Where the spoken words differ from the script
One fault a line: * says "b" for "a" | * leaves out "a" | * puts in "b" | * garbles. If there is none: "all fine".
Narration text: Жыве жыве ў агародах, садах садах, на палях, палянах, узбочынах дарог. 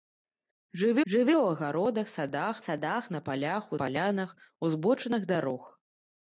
all fine